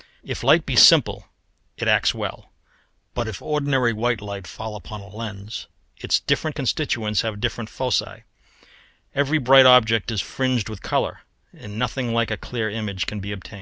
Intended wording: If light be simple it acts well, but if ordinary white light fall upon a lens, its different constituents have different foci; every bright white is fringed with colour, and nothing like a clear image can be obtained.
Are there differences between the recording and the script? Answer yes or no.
yes